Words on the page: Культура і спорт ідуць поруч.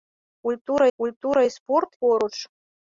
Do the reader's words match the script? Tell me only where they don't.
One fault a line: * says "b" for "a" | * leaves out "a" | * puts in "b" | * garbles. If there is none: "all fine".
* puts in "культура"
* leaves out "ідуць"